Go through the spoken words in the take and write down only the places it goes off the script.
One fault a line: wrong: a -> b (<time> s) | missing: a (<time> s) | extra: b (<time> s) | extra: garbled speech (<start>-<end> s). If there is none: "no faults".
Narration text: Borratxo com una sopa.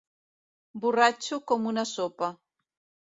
no faults